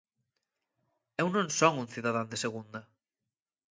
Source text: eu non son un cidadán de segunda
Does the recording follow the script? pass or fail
pass